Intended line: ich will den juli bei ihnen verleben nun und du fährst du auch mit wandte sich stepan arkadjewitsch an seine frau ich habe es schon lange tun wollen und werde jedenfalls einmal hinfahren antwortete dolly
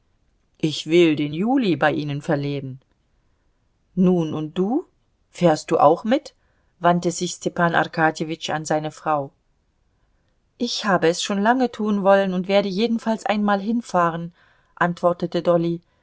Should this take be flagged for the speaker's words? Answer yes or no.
no